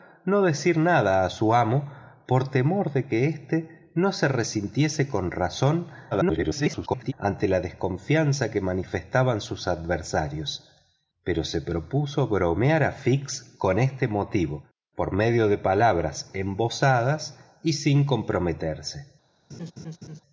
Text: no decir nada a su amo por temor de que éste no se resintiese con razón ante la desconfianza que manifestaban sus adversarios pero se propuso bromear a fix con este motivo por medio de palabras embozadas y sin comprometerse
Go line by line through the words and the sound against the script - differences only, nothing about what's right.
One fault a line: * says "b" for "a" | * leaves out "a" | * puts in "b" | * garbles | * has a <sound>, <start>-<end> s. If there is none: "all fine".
* garbles
* has a laugh, 19.5-20.2 s